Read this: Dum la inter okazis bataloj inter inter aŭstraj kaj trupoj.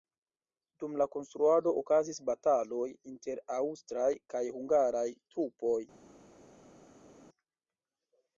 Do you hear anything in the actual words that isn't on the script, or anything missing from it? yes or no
yes